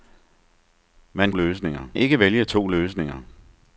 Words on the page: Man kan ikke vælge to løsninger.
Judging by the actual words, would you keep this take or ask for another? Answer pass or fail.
fail